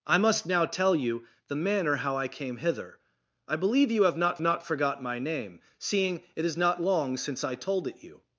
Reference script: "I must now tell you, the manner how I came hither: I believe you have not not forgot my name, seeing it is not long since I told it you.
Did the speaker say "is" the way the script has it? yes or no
yes